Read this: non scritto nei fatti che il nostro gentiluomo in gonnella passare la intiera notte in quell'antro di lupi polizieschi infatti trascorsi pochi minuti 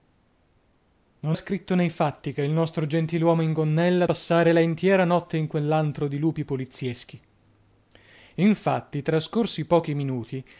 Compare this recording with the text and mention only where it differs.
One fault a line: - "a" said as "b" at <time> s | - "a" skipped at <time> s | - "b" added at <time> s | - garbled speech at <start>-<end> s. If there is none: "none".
none